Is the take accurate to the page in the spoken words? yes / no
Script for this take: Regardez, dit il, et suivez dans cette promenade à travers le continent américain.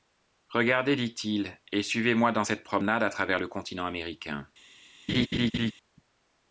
no